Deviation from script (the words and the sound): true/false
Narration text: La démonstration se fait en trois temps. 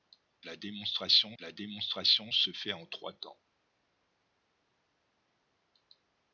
true